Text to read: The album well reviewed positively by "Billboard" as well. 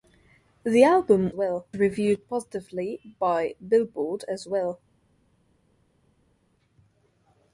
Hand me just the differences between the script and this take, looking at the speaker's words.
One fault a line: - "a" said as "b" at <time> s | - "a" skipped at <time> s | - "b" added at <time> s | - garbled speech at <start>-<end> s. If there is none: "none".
none